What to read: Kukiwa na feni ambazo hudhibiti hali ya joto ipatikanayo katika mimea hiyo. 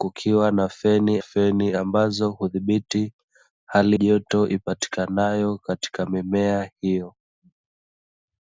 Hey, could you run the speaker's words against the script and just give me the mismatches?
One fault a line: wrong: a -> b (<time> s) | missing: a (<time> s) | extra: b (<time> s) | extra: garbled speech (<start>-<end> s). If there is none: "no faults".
extra: feni (1.2 s)
missing: ya (4.0 s)